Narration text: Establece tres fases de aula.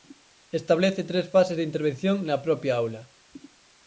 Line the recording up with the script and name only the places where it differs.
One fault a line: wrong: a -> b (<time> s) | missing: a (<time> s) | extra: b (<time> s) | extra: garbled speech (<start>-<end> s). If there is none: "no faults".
extra: intervención na propia (1.7 s)